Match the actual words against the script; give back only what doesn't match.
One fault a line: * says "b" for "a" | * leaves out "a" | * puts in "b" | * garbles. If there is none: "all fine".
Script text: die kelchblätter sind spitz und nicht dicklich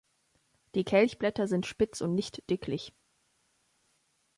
all fine